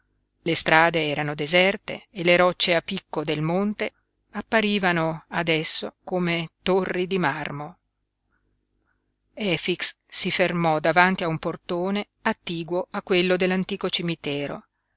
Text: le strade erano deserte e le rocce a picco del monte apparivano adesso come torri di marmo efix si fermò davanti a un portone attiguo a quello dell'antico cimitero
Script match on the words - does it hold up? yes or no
yes